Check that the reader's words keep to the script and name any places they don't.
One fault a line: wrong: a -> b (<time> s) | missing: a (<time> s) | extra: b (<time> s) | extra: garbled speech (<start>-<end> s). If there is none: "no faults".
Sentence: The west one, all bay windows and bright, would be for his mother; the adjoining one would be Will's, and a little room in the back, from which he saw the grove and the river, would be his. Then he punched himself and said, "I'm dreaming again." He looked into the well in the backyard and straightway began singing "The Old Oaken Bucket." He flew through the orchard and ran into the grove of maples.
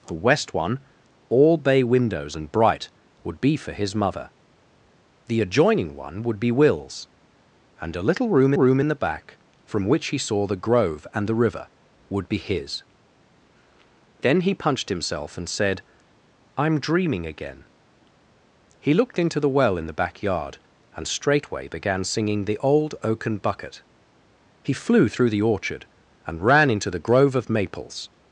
extra: room (8.5 s)